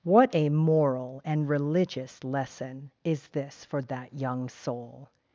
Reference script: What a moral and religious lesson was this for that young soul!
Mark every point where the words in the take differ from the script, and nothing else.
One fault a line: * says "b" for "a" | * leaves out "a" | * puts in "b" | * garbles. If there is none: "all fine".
* says "is" for "was"